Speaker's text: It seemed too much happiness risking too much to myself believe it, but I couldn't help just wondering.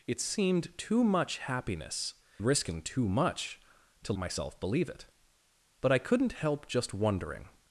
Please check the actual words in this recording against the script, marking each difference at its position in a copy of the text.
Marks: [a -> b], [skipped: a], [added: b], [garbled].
It seemed too much happiness risking too much to myself believe it, but I couldn't help just wondering.